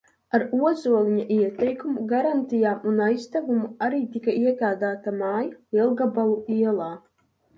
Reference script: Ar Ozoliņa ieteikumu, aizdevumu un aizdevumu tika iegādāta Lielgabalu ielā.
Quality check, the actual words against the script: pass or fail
fail